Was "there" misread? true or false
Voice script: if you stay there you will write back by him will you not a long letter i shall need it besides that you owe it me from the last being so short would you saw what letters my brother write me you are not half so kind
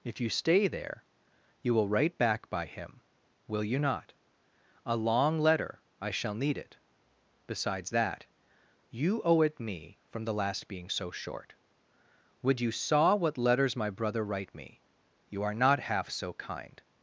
false